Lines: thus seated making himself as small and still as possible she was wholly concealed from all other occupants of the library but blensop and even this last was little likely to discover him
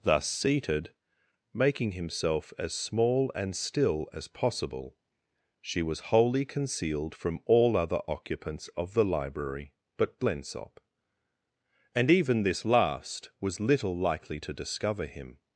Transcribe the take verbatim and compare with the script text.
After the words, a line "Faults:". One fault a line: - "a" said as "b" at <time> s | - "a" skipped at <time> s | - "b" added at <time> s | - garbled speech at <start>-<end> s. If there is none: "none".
thus seated making himself as small and still as possible she was wholly concealed from all other occupants of the library but blensop and even this last was little likely to discover him
Faults:
none